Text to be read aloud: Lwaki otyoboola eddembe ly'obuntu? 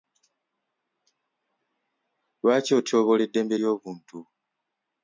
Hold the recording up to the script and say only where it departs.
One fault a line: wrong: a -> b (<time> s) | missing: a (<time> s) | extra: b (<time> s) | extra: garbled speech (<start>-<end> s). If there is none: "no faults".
no faults